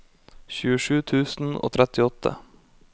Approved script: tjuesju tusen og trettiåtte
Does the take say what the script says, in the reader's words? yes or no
yes